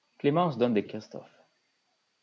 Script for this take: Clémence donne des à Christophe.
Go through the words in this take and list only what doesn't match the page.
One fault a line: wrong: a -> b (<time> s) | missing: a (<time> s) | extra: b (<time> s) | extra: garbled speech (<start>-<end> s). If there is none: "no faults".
no faults